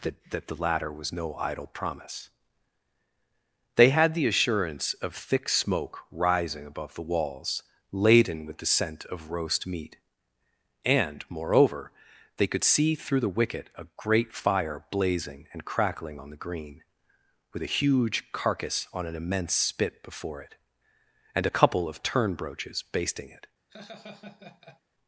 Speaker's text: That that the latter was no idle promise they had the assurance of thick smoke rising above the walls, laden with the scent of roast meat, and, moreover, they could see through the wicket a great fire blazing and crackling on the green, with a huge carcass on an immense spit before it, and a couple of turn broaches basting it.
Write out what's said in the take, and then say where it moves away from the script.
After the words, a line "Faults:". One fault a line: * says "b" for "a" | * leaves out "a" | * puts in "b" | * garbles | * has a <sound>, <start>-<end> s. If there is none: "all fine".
That that the latter was no idle promise they had the assurance of thick smoke rising above the walls, laden with the scent of roast meat, and, moreover, they could see through the wicket a great fire blazing and crackling on the green, with a huge carcass on an immense spit before it, and a couple of turn broaches basting it.
Faults:
* has a laugh, 23.7-24.8 s